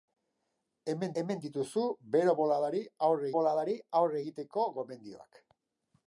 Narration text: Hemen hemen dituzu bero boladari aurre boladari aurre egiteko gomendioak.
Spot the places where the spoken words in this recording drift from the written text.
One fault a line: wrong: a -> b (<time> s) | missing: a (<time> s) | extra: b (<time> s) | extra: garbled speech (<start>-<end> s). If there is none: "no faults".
no faults